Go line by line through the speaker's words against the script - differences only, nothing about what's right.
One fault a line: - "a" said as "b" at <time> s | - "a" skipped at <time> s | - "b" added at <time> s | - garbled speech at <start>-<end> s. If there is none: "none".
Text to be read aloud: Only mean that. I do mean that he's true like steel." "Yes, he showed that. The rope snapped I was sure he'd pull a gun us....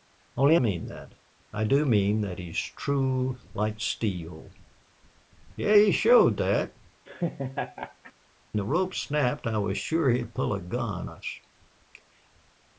none